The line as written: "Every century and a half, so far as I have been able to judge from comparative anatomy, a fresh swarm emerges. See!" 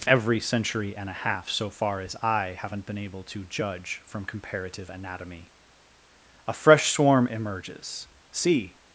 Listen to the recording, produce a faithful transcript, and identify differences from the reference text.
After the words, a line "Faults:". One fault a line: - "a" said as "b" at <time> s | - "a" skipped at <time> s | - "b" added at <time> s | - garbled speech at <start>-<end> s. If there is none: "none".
"Every century and a half, so far as I haven't been able to judge from comparative anatomy, a fresh swarm emerges. See!"
Faults:
- "have" said as "haven't" at 2.6 s